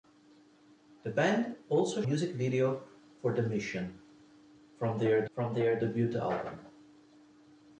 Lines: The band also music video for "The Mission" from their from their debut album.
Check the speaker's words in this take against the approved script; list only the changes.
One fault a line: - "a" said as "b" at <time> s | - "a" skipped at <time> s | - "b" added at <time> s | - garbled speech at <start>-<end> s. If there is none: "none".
none